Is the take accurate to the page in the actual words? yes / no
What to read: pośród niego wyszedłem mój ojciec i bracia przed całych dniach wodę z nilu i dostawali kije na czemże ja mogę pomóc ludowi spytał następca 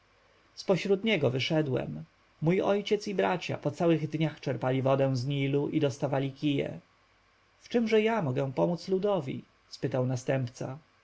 no